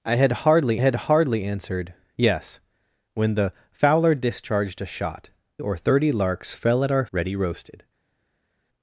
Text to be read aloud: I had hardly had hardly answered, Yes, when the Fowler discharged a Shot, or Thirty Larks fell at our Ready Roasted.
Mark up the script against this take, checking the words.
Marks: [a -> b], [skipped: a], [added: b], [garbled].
I had hardly had hardly answered, Yes, when the Fowler discharged a Shot, or Thirty Larks fell at our Ready Roasted.